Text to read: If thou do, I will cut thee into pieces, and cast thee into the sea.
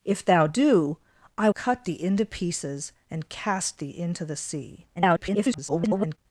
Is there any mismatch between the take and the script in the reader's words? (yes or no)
yes